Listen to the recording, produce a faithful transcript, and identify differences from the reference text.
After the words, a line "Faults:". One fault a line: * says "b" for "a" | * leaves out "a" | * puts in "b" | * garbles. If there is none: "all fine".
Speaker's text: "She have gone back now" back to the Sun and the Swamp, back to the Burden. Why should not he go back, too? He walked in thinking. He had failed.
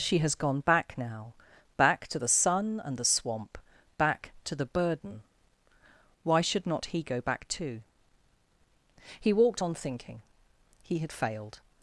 "She has gone back now" back to the Sun and the Swamp, back to the Burden. Why should not he go back, too? He walked on thinking. He had failed.
Faults:
* says "has" for "have"
* says "on" for "in"